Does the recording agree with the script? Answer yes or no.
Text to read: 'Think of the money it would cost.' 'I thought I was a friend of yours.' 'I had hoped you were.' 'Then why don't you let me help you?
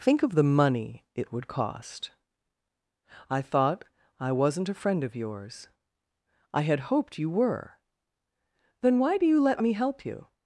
no